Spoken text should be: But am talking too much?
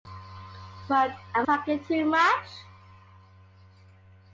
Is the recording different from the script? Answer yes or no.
no